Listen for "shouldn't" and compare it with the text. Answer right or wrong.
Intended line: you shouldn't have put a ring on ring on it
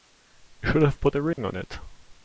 wrong